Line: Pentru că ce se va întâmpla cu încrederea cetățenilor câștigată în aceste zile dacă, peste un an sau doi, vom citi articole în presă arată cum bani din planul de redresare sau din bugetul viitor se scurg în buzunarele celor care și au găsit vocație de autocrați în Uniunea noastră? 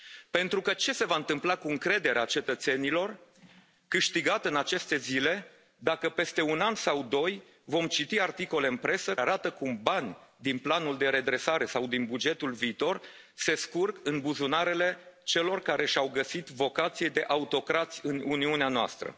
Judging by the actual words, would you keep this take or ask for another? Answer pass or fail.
pass